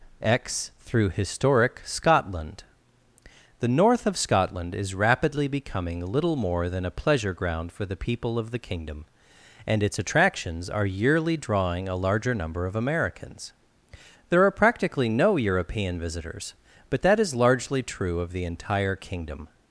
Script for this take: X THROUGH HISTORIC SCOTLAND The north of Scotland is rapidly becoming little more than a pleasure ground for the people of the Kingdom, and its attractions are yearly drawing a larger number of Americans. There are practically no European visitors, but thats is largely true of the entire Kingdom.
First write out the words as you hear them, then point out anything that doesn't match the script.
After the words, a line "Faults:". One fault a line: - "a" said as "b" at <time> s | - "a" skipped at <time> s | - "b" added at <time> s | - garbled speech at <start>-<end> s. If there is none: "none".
X THROUGH HISTORIC SCOTLAND The north of Scotland is rapidly becoming little more than a pleasure ground for the people of the Kingdom, and its attractions are yearly drawing a larger number of Americans. There are practically no European visitors, but that is largely true of the entire Kingdom.
Faults:
- "thats" said as "that" at 17.0 s